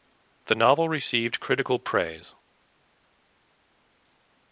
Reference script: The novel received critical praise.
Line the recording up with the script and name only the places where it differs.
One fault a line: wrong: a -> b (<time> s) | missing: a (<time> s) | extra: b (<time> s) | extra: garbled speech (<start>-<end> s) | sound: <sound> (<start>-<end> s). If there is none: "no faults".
no faults